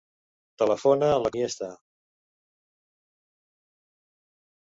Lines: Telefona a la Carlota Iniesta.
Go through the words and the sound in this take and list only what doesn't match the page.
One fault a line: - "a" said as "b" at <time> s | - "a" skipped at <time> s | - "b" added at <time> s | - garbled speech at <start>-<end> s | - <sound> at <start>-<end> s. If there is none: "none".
- "Carlota" skipped at 1.3 s